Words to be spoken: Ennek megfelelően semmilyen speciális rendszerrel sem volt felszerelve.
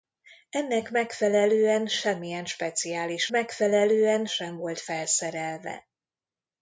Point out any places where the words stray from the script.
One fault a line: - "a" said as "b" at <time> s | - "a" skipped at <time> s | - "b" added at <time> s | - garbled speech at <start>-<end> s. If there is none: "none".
- "rendszerrel" said as "megfelelően" at 3.3 s